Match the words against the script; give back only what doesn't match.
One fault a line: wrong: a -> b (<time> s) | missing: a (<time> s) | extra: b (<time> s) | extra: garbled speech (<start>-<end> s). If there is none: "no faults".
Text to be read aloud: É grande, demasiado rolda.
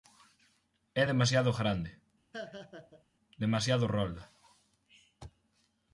extra: demasiado (1.1 s)